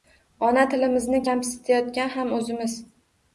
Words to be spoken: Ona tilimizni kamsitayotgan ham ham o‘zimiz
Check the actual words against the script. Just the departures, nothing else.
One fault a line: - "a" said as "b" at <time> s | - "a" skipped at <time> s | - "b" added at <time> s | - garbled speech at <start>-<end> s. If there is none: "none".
- "ham" skipped at 2.3 s